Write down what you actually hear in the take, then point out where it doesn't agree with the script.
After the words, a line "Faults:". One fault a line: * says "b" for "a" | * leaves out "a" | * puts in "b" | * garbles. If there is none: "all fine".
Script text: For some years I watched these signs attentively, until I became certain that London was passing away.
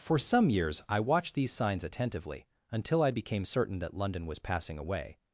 For some years I watched these signs attentively, until I became certain that London was passing away.
Faults:
all fine